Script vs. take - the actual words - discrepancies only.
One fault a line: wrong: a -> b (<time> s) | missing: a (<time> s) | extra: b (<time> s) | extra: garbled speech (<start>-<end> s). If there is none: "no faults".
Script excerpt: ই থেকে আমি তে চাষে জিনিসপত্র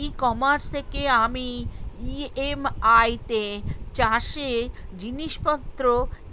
extra: কমার্স (0.2 s)
extra: ই.এম.আই (2.1 s)